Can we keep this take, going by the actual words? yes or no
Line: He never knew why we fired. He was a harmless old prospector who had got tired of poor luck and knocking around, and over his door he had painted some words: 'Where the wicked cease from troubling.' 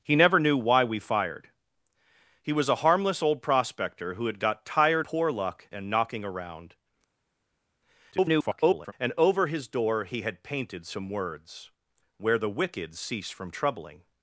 no